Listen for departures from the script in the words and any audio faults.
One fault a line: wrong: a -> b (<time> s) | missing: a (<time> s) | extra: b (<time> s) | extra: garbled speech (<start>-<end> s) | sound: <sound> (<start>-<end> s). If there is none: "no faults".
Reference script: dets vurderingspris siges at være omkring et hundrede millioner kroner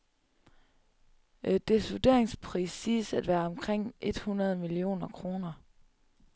no faults